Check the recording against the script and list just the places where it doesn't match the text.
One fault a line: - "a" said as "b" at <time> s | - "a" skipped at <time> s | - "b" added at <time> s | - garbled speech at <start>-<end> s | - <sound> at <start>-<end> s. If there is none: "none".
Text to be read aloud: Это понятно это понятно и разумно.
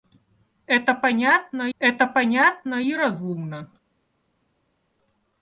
none